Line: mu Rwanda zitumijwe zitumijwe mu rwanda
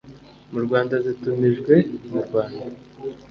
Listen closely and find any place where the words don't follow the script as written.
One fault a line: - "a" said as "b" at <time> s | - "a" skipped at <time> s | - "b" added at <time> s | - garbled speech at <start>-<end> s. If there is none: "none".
- "zitumijwe" skipped at 1.7 s